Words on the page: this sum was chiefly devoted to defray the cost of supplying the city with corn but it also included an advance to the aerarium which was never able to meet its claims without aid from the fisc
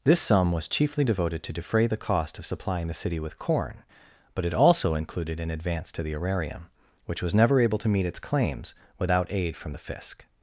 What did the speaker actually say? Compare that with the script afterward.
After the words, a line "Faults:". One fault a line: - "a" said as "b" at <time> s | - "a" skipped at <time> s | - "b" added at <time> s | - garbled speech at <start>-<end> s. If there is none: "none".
this sum was chiefly devoted to defray the cost of supplying the city with corn but it also included an advance to the aerarium which was never able to meet its claims without aid from the fisc
Faults:
none